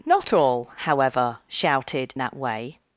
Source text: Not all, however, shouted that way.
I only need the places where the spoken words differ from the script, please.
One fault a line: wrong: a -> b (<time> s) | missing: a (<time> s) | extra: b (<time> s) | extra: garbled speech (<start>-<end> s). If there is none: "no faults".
no faults